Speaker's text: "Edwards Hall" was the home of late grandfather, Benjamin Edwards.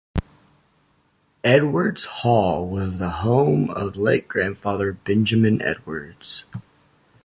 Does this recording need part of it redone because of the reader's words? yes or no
no